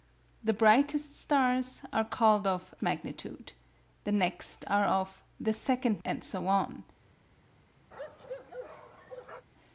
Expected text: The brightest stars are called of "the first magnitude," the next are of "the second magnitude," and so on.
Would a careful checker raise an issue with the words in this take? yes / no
yes